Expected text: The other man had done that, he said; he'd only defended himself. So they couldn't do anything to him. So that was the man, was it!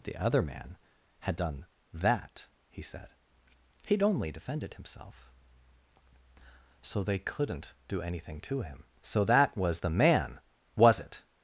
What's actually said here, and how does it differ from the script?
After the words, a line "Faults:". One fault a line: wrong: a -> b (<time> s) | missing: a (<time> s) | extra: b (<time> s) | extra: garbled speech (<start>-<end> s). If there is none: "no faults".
The other man had done that, he said; he'd only defended himself. So they couldn't do anything to him. So that was the man, was it!
Faults:
no faults